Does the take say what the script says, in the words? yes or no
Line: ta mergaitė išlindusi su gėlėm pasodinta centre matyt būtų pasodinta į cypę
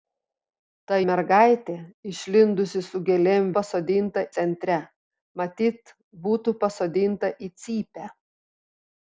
yes